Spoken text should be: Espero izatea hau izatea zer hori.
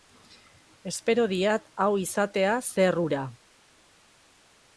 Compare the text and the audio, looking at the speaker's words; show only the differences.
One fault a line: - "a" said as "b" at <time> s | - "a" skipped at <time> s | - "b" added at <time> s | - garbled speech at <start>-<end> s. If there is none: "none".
- "izatea" said as "diat" at 1.3 s
- "hori" said as "hura" at 3.0 s